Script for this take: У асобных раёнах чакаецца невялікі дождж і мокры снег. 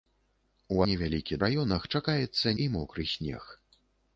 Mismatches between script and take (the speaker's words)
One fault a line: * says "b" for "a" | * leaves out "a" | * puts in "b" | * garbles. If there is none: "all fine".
* says "невялікі" for "асобных"
* leaves out "невялікі дождж"